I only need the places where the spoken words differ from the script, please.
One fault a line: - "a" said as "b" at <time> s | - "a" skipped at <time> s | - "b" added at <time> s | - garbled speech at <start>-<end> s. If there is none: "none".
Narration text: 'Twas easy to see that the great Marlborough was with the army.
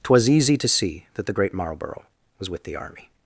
none